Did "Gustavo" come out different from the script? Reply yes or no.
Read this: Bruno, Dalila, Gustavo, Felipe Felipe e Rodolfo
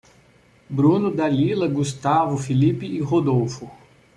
no